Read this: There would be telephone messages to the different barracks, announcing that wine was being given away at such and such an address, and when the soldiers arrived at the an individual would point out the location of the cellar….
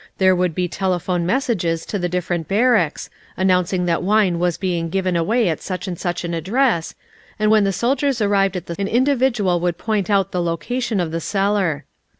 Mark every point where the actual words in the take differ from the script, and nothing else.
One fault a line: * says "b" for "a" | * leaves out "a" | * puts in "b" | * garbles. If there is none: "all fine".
all fine